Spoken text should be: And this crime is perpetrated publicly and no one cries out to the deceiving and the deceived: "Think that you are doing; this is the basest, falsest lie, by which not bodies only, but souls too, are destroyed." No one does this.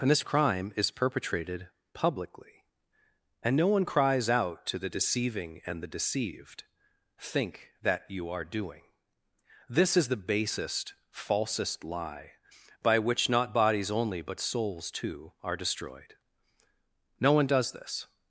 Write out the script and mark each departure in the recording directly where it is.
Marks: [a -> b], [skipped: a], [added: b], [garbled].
And this crime is perpetrated publicly and no one cries out to the deceiving and the deceived: "Think that you are doing; this is the basest, falsest lie, by which not bodies only, but souls too, are destroyed." No one does this.